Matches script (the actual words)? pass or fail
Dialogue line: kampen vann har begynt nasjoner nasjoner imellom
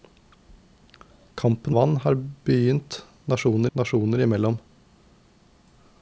pass